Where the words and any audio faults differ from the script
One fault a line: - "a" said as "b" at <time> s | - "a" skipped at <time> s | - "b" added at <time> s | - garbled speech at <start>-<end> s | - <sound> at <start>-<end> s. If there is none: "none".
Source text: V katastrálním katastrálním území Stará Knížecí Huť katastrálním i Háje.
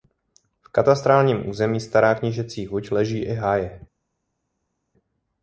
- "katastrálním" skipped at 1.5 s
- "katastrálním" said as "leží" at 2.9 s